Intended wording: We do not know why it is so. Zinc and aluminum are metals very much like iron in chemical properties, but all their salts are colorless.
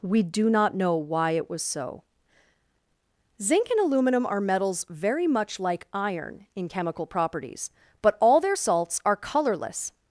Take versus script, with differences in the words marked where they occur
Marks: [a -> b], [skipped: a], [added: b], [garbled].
We do not know why it [is -> was] so. Zinc and aluminum are metals very much like iron in chemical properties, but all their salts are colorless.